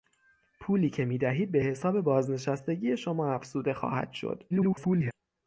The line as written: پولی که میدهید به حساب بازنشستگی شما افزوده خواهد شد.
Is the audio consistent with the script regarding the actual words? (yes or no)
no